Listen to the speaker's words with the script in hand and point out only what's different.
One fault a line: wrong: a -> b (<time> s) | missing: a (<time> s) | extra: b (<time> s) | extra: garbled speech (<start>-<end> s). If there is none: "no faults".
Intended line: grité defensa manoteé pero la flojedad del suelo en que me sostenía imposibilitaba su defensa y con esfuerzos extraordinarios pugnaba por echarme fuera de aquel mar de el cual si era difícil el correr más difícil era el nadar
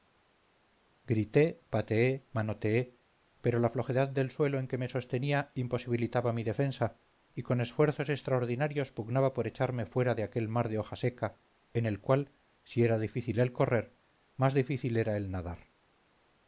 wrong: defensa -> pateé (1.7 s)
wrong: su -> mi (6.3 s)
extra: hoja seca en (10.8 s)